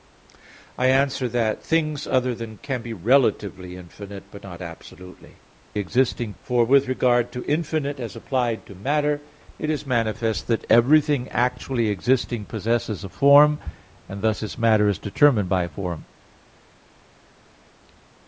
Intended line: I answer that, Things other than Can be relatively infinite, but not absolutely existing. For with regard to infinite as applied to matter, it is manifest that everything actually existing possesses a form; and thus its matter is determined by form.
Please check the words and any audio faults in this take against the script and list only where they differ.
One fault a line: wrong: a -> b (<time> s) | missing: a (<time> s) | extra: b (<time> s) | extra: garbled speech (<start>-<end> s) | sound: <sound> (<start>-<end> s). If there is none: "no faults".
no faults